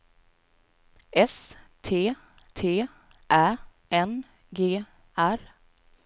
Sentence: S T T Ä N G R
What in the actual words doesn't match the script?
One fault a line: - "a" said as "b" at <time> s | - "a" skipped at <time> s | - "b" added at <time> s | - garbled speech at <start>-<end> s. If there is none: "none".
none